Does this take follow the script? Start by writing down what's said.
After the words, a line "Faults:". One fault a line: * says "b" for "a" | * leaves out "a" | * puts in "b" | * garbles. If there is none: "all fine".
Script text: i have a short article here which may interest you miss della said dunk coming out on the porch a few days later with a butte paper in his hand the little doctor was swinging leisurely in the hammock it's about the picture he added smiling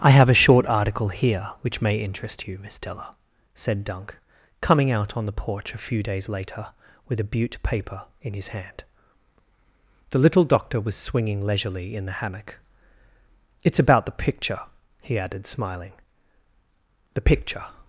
i have a short article here which may interest you miss della said dunk coming out on the porch a few days later with a butte paper in his hand the little doctor was swinging leisurely in the hammock it's about the picture he added smiling the picture
Faults:
* puts in "the picture"